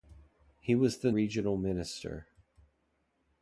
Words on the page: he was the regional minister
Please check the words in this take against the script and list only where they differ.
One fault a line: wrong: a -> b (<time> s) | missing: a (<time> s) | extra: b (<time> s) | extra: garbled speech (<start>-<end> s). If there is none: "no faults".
no faults